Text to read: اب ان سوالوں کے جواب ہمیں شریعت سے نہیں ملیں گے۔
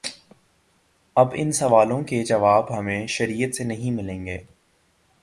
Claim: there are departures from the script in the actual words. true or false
false